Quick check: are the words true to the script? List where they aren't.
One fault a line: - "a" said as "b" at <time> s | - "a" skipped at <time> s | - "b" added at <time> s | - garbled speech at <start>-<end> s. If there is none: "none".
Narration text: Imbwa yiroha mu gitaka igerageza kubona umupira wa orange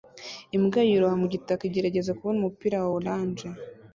none